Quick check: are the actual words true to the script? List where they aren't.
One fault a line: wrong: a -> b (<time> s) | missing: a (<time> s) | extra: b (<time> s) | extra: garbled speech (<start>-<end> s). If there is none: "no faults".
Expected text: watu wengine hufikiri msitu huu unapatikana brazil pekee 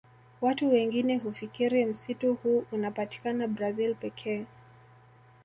no faults